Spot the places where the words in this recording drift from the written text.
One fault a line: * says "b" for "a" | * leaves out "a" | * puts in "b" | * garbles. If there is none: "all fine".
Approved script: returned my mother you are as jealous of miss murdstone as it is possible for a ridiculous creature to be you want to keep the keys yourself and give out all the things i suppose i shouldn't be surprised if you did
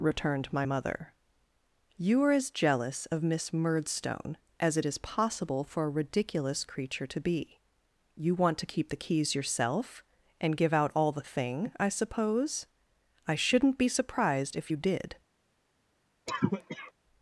* says "thing" for "things"